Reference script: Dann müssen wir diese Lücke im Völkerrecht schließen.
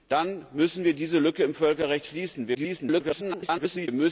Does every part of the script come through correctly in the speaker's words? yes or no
no